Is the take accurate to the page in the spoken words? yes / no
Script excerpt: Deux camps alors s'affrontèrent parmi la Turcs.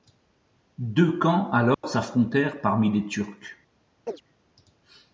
no